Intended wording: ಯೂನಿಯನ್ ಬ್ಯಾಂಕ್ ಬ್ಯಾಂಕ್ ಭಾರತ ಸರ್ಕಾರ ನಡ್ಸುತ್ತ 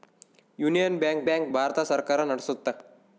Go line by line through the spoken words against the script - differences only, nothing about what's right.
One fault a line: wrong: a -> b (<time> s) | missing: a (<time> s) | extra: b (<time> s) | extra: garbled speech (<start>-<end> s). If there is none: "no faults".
no faults